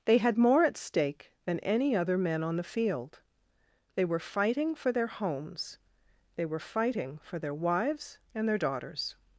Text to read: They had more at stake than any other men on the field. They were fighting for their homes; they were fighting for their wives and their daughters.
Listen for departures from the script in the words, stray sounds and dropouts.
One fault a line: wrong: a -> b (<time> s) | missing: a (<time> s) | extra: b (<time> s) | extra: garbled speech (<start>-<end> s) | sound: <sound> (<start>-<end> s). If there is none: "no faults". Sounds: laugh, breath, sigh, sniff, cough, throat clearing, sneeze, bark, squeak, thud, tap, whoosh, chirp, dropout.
no faults